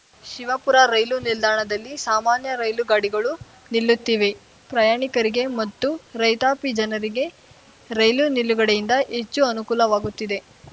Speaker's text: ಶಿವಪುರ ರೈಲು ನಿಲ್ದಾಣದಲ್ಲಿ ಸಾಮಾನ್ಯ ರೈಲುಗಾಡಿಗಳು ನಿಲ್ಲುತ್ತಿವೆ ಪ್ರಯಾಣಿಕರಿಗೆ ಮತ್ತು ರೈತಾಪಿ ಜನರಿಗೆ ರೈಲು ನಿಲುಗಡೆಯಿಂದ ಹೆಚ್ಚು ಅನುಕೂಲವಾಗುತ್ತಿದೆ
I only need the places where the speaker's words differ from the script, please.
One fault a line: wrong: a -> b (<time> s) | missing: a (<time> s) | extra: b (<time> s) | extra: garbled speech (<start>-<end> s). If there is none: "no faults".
no faults